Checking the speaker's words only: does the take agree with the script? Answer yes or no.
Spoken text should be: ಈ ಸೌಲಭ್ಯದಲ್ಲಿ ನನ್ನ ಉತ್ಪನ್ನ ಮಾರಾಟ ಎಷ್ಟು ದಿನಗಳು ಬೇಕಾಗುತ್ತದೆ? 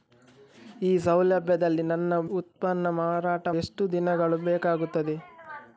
yes